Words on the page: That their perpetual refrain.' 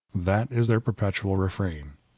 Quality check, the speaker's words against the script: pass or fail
fail